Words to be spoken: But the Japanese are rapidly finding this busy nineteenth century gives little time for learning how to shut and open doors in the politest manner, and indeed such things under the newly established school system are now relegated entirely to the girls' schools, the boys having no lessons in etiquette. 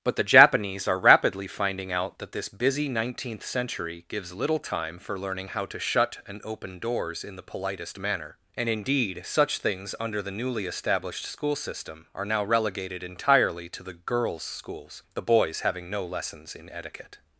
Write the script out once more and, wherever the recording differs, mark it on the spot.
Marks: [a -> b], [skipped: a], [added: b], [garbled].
But the Japanese are rapidly finding [added: out that] this busy nineteenth century gives little time for learning how to shut and open doors in the politest manner, and indeed such things under the newly established school system are now relegated entirely to the girls' schools, the boys having no lessons in etiquette.